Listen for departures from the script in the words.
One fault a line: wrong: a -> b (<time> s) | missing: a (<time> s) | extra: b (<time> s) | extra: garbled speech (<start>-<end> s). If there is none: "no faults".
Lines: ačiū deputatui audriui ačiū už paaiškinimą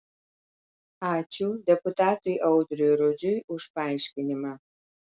wrong: ačiū -> rudžiui (3.0 s)